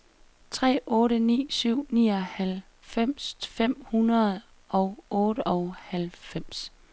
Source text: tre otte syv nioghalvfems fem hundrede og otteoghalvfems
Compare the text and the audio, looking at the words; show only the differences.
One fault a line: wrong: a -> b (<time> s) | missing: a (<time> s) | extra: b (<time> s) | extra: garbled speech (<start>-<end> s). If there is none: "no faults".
extra: ni (1.2 s)